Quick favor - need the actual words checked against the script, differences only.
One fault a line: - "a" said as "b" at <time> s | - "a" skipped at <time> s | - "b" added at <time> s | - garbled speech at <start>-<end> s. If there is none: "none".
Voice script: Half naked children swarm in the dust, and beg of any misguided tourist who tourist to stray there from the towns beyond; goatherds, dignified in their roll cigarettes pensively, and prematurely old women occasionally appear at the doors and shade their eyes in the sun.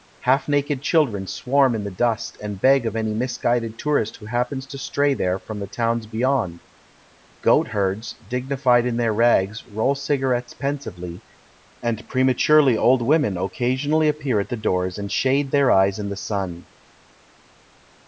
- "tourist" said as "happens" at 4.2 s
- "rags" added at 9.1 s